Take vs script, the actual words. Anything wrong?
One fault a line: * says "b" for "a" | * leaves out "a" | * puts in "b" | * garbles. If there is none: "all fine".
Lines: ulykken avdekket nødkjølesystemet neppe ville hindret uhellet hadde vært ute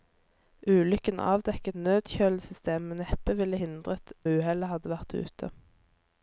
all fine